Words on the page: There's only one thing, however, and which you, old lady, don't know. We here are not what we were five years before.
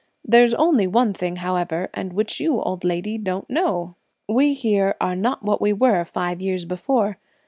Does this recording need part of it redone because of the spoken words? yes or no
no